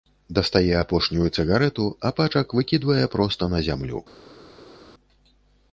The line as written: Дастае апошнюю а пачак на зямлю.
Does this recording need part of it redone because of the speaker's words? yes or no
yes